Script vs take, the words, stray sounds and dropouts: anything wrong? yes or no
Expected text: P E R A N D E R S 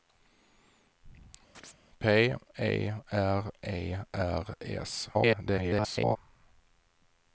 yes